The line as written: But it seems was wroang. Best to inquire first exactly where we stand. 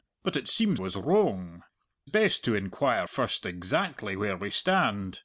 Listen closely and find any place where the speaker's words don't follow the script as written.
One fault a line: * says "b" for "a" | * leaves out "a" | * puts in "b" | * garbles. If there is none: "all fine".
all fine